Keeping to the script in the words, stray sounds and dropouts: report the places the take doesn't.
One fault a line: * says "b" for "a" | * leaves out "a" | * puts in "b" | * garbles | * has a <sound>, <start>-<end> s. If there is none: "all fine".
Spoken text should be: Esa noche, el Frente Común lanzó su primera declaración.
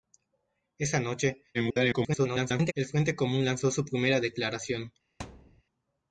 * garbles
* has a thud, 5.2-5.6 s